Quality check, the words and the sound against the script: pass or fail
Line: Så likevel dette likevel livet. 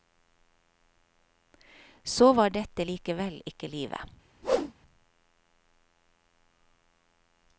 fail